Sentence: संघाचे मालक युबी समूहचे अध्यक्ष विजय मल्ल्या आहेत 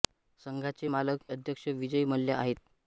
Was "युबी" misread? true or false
true